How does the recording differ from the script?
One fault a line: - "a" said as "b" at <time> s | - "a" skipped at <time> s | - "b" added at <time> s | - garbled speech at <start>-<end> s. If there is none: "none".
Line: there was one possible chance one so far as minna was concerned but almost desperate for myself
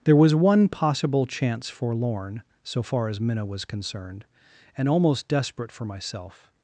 - "one" said as "forlorn" at 1.7 s
- "but" said as "and" at 4.8 s